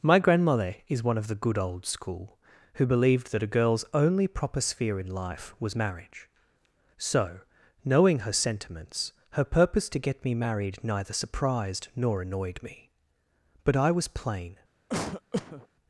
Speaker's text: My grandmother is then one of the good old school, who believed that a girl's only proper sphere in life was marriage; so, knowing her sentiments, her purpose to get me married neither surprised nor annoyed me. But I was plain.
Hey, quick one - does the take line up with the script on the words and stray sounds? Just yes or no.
no